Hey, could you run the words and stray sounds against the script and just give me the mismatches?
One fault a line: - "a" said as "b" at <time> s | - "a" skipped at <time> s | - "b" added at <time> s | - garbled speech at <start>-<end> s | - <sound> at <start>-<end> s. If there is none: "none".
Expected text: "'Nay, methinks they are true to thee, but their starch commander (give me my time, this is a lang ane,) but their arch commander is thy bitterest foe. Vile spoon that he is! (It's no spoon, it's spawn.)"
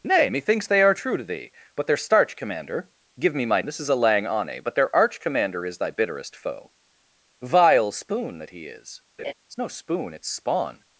- "time" skipped at 3.6 s
- laugh at 9.2-9.3 s